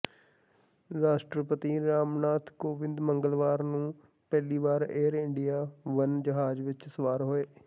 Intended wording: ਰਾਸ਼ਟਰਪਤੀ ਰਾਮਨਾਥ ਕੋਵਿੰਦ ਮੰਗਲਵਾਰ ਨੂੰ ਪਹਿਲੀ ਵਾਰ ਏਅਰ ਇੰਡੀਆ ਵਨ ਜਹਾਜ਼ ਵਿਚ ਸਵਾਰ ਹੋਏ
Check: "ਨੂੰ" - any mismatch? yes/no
no